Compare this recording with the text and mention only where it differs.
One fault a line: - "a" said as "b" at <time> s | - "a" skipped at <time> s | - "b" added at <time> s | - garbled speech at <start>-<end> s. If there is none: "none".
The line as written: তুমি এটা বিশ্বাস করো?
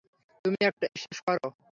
- "এটা" skipped at 0.6 s